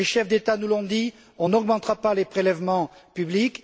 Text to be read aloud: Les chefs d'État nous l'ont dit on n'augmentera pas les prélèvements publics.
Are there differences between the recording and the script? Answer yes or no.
no